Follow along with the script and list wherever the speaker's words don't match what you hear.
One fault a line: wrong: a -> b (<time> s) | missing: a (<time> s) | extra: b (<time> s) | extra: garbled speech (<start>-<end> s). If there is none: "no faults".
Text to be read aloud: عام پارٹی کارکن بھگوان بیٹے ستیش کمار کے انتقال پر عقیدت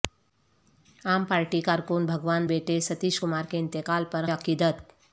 no faults